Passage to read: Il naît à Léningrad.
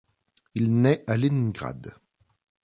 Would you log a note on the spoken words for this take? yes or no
no